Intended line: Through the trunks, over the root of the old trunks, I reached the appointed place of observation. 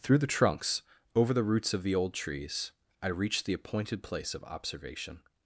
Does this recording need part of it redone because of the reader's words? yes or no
yes